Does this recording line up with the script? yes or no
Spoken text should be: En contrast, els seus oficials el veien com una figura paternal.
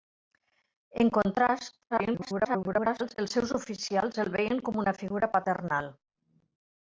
no